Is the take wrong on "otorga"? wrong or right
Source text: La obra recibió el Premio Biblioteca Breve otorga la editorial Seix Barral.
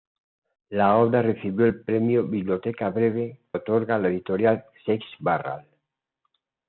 right